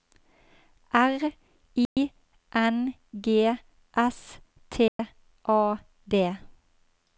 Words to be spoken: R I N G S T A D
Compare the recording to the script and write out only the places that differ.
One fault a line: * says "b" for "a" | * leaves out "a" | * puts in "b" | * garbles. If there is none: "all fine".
all fine